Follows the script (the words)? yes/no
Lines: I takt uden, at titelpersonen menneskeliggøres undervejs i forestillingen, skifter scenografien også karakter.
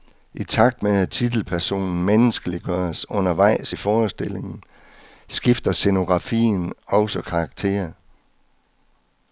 no